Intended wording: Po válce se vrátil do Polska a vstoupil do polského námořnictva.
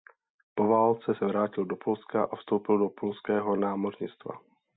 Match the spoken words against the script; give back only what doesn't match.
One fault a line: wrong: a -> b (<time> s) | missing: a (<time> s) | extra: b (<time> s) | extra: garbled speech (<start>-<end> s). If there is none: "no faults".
no faults